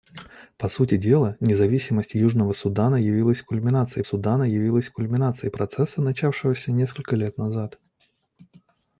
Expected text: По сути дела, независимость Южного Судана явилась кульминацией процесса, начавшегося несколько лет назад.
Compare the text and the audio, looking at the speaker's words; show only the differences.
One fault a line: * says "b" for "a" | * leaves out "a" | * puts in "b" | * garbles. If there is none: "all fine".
* puts in "Судана явилась кульминацией"